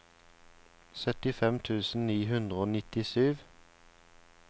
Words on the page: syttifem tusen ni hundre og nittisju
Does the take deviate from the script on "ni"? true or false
false